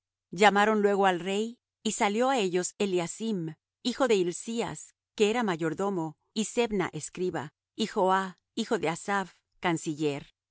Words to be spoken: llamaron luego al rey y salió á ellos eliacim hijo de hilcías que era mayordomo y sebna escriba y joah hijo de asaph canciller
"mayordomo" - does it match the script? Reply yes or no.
yes